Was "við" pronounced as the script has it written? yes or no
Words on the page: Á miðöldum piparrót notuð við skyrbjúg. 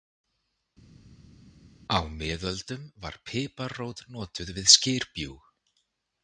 yes